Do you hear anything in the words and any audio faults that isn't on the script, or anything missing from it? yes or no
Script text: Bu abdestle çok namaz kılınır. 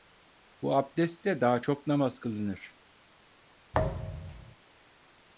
yes